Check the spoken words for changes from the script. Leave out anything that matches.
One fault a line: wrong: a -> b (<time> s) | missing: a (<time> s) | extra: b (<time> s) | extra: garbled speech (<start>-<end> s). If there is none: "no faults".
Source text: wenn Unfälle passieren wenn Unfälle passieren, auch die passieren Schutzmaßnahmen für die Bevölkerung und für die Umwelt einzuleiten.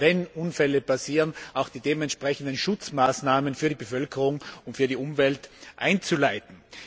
missing: wenn Unfälle passieren (1.3 s)
wrong: passieren -> dementsprechenden (1.8 s)